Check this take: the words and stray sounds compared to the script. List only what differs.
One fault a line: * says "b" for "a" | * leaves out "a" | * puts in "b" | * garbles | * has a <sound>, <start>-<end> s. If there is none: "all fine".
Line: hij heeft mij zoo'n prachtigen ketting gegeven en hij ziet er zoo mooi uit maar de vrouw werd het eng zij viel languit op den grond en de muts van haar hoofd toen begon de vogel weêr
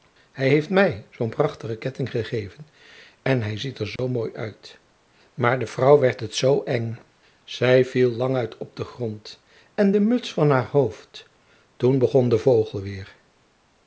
* has a dropout, 4.0-4.0 s
* puts in "zoo"